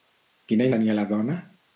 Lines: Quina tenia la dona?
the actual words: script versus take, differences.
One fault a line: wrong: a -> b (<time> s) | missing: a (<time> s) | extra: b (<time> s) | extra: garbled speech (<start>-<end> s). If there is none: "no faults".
no faults